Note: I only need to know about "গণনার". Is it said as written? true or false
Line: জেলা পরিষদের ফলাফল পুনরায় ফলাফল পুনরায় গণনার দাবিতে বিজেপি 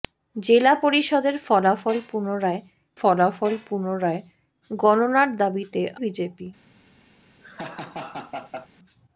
true